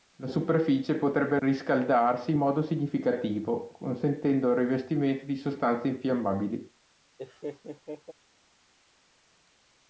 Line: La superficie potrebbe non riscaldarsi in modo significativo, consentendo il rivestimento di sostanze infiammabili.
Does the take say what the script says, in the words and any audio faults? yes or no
no